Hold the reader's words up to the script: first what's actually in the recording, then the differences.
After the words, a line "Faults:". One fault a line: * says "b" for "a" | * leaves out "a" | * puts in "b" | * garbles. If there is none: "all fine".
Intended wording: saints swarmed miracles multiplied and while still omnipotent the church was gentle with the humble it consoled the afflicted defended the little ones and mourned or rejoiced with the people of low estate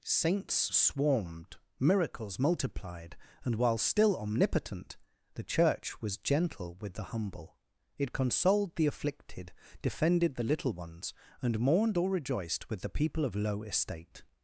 saints swarmed miracles multiplied and while still omnipotent the church was gentle with the humble it consoled the afflicted defended the little ones and mourned or rejoiced with the people of low estate
Faults:
all fine